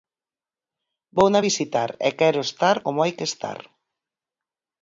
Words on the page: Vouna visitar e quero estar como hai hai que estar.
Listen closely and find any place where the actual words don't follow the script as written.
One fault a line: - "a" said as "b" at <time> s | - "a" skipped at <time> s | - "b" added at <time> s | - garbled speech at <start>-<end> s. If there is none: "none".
- "hai" skipped at 3.1 s